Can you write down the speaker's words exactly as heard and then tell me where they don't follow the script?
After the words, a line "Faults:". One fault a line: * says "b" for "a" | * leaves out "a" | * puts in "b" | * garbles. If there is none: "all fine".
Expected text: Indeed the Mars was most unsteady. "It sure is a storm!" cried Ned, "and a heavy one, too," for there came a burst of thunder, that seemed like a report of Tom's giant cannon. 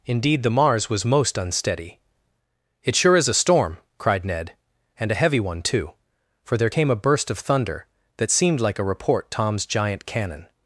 Indeed the Mars was most unsteady. "It sure is a storm!" cried Ned, "and a heavy one, too," for there came a burst of thunder, that seemed like a report Tom's giant cannon.
Faults:
* leaves out "of"